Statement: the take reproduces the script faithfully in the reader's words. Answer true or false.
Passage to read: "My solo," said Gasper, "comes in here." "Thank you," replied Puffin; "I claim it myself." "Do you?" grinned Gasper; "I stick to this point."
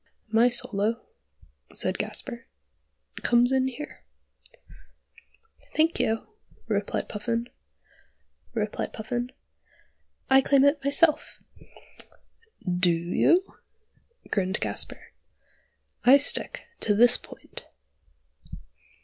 false